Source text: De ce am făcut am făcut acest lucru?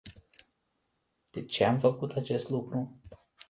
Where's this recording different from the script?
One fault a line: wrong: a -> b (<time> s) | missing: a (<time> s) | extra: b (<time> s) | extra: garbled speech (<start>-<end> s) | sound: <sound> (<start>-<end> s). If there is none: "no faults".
missing: am făcut (2.1 s)